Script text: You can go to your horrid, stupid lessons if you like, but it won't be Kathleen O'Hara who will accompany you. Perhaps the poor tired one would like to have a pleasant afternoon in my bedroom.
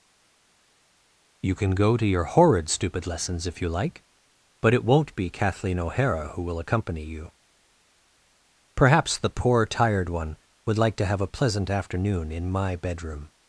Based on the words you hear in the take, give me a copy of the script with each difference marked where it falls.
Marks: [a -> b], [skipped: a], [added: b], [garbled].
You can go to your horrid, stupid lessons if you like, but it won't be Kathleen O'Hara who will accompany you. Perhaps the poor tired one would like to have a pleasant afternoon in my bedroom.